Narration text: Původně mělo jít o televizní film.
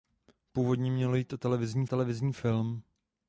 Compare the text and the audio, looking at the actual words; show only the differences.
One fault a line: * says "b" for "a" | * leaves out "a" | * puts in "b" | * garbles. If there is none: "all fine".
* puts in "televizní"